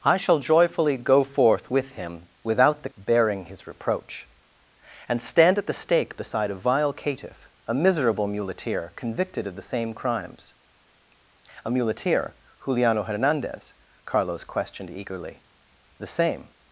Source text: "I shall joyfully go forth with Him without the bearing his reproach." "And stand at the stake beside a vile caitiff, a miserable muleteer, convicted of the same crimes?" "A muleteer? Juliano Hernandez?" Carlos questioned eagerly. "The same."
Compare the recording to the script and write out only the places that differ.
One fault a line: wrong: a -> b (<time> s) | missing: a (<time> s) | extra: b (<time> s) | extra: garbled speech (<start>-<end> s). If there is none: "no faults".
no faults